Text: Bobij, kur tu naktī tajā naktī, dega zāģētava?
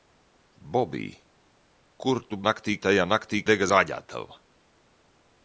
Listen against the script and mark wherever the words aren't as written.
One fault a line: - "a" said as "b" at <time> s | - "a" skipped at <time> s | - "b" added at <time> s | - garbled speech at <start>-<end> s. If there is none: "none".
none